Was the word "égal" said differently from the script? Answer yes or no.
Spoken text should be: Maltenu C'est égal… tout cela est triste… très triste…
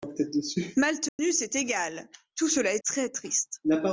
no